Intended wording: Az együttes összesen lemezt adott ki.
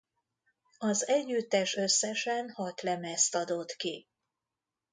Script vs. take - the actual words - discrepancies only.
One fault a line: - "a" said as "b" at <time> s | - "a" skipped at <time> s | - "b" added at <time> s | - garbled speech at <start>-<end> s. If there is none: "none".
- "hat" added at 2.5 s